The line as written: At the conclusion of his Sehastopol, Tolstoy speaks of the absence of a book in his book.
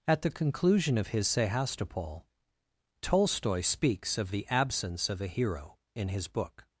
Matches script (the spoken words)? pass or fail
fail